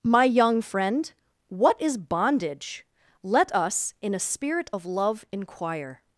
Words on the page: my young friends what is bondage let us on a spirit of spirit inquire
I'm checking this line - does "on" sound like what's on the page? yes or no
no